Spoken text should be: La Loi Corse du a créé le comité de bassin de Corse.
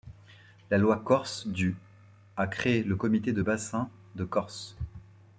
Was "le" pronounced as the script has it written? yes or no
yes